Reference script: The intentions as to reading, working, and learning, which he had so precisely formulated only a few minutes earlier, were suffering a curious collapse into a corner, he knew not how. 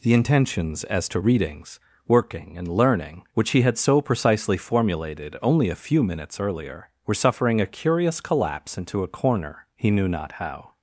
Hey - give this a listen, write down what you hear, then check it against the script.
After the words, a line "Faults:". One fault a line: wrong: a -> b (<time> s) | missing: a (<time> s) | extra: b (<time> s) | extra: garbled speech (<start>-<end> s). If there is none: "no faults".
The intentions as to readings, working, and learning, which he had so precisely formulated only a few minutes earlier, were suffering a curious collapse into a corner, he knew not how.
Faults:
wrong: reading -> readings (1.2 s)